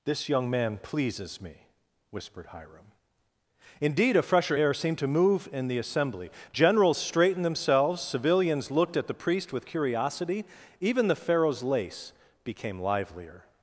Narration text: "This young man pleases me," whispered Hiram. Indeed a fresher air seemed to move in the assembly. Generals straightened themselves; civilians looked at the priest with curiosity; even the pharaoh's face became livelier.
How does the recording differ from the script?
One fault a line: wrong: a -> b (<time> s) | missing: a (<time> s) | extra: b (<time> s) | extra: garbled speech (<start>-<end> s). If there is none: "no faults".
wrong: face -> lace (11.6 s)